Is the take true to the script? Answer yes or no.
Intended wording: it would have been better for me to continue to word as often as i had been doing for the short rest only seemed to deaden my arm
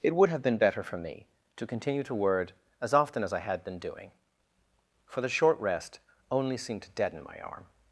yes